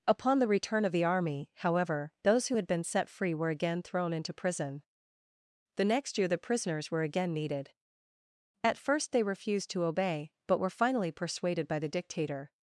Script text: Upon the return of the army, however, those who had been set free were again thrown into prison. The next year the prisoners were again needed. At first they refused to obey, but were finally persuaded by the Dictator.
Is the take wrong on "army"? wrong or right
right